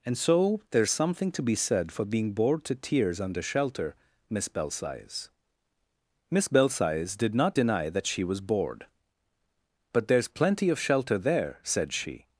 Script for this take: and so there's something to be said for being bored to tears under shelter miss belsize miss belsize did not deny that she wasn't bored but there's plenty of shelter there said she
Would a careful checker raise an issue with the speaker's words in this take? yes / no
yes